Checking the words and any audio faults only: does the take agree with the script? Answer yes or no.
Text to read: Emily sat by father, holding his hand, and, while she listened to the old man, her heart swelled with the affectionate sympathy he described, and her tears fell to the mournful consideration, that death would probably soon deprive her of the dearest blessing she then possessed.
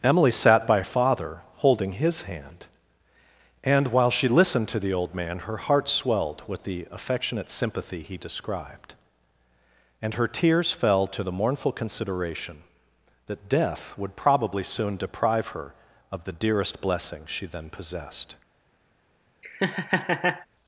no